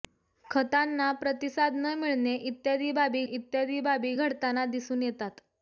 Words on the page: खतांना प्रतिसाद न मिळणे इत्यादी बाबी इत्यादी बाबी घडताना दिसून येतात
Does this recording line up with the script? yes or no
yes